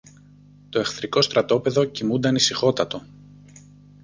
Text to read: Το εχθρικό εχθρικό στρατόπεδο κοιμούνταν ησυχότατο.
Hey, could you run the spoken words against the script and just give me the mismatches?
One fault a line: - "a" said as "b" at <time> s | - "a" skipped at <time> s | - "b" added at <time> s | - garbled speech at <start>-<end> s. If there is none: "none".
- "εχθρικό" skipped at 1.2 s